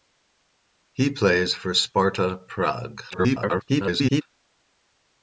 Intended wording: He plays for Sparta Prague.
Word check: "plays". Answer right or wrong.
right